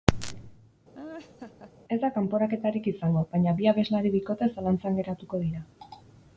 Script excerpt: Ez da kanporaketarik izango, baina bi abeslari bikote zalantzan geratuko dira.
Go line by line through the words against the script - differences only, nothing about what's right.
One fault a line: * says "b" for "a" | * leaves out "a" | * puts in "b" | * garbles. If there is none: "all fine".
all fine